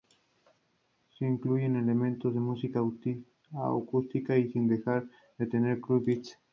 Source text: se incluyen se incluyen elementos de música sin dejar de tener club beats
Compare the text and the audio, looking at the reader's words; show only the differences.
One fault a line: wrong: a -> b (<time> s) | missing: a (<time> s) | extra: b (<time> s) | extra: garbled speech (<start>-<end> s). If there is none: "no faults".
missing: se incluyen (1.8 s)
extra: acústica (3.5 s)